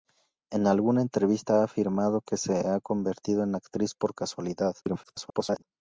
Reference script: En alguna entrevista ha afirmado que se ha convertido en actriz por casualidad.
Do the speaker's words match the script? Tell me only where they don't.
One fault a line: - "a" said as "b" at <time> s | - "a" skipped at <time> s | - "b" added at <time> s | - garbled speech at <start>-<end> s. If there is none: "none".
- garbled speech at 4.8-5.6 s